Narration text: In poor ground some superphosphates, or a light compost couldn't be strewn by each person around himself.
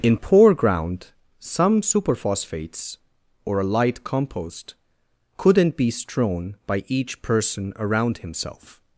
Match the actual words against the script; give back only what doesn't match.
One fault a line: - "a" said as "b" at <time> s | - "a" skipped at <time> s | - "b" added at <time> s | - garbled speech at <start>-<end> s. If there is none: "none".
none